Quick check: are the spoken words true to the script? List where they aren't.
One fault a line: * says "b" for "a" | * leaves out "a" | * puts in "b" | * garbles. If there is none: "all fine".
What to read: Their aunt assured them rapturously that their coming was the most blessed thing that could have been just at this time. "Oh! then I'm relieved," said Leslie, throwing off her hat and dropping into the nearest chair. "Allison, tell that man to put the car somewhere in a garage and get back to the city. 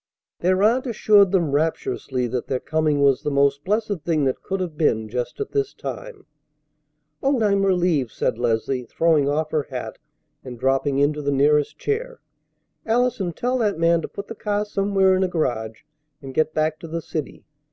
* leaves out "then"